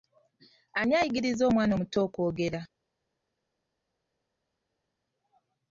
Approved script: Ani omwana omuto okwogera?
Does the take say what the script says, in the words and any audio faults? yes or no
no